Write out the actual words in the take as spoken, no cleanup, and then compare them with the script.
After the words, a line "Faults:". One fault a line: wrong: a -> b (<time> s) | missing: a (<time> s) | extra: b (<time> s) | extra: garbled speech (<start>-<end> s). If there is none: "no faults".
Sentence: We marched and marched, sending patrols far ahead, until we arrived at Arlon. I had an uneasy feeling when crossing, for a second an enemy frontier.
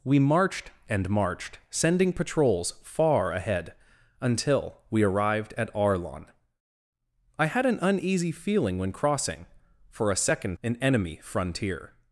We marched and marched, sending patrols far ahead, until we arrived at Arlon. I had an uneasy feeling when crossing, for a second an enemy frontier.
Faults:
no faults